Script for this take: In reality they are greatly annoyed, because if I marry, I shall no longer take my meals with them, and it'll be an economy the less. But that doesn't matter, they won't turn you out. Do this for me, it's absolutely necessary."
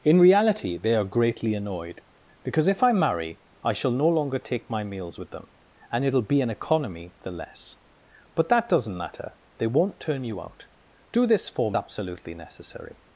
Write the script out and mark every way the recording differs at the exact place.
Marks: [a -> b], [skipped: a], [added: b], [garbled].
In reality they are greatly annoyed, because if I marry, I shall no longer take my meals with them, and it'll be an economy the less. But that doesn't matter, they won't turn you out. Do this for [skipped: me, it's] absolutely necessary."